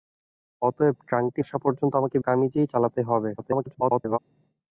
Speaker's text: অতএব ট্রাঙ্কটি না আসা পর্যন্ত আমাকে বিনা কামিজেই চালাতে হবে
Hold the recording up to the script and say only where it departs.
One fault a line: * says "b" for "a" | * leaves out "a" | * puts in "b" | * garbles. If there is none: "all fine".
* leaves out "না"
* leaves out "বিনা"
* garbles